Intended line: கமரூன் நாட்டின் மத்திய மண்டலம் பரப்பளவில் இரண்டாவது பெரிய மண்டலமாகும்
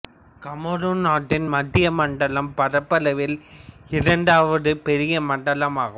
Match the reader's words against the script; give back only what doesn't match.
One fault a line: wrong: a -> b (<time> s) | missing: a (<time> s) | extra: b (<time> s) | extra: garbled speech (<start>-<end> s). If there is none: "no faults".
no faults